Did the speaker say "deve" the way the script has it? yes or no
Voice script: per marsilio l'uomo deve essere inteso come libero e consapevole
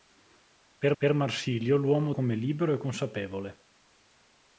no